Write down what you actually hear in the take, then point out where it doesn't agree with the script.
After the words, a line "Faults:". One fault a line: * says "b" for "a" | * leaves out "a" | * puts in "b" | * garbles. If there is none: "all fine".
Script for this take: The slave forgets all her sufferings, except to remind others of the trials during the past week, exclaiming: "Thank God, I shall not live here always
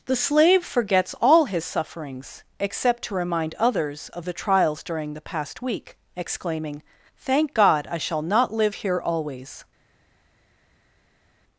The slave forgets all his sufferings, except to remind others of the trials during the past week, exclaiming: "Thank God, I shall not live here always
Faults:
* says "his" for "her"